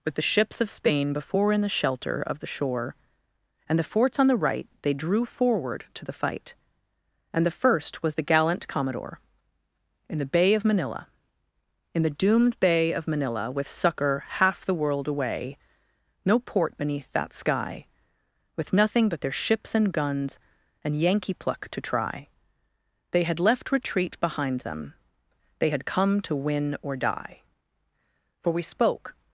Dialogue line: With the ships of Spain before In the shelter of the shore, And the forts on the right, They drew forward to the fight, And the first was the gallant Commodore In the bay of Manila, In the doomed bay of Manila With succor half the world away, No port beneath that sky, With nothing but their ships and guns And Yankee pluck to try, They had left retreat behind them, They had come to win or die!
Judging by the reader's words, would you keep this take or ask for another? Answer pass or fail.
fail